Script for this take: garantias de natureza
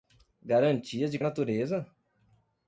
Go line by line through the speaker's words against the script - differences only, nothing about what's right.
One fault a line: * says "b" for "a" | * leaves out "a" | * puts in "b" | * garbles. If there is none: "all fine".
all fine